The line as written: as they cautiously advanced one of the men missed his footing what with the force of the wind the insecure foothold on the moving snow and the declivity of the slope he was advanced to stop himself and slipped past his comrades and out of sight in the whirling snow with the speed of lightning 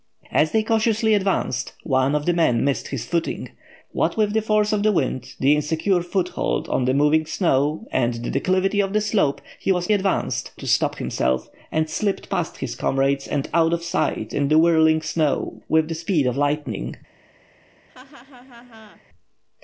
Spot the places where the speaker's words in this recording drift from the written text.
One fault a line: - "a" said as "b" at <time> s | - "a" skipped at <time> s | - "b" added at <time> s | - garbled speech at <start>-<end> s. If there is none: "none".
none